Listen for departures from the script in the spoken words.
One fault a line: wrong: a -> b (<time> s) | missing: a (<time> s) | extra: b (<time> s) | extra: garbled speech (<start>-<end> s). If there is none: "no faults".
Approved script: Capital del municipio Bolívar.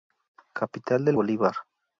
missing: municipio (1.1 s)